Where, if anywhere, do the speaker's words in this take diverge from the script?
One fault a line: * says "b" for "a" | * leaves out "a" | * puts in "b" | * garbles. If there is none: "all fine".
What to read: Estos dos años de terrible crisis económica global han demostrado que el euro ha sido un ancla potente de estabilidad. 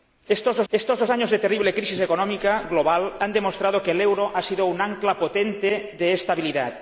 * puts in "estos dos"